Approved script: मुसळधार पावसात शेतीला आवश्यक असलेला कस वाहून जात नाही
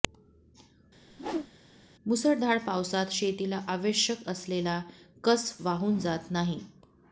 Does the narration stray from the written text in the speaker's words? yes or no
no